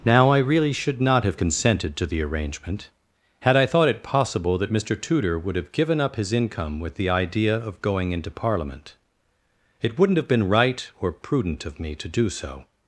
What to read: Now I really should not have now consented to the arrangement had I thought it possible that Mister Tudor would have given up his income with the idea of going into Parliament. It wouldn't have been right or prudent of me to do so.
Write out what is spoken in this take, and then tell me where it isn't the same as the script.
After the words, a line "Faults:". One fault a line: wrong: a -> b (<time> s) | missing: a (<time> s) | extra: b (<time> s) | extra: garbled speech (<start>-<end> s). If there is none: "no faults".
Now I really should not have consented to the arrangement had I thought it possible that Mister Tudor would have given up his income with the idea of going into Parliament. It wouldn't have been right or prudent of me to do so.
Faults:
missing: now (1.4 s)